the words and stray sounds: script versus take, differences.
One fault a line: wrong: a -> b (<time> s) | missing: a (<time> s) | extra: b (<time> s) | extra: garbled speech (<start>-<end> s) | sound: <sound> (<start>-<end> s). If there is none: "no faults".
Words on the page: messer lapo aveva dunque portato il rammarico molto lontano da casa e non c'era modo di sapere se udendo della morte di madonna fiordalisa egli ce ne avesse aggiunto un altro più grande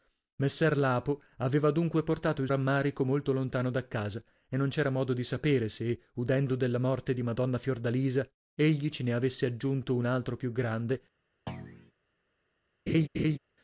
sound: thud (11.5-11.9 s)
sound: laugh (12.9-13.4 s)